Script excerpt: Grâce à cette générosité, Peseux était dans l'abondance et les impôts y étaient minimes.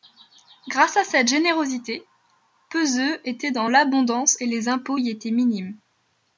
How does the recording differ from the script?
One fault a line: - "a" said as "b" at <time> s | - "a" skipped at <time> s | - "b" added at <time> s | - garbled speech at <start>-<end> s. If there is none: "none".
none